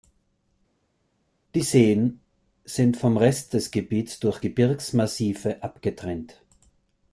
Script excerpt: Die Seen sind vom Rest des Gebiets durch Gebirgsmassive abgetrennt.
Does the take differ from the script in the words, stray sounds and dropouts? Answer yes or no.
no